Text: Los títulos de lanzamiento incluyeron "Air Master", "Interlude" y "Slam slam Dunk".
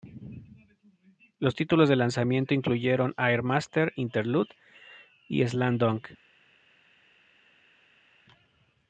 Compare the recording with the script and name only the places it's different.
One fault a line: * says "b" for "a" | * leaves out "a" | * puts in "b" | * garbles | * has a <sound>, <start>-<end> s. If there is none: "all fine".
* leaves out "slam"